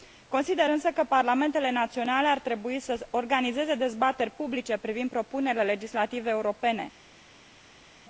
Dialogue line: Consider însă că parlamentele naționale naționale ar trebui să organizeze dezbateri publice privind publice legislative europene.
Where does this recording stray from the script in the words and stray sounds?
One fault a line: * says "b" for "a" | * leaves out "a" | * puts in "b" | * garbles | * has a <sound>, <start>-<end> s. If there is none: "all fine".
* leaves out "naționale"
* says "propunerile" for "publice"